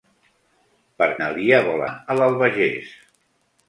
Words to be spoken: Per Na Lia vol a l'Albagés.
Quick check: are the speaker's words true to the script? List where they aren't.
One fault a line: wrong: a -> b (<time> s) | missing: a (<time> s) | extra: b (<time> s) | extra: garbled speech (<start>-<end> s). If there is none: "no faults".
no faults